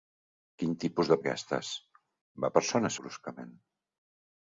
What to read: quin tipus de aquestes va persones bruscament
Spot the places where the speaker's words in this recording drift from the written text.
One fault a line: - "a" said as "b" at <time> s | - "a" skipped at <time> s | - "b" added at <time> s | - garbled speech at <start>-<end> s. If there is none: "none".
none